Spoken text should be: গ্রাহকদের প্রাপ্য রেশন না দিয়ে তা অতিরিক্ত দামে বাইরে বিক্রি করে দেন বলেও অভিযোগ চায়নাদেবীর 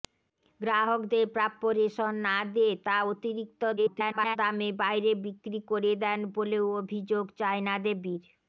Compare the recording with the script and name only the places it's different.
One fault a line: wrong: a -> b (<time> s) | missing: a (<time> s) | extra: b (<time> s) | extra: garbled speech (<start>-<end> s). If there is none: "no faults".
extra: garbled speech (3.8-4.4 s)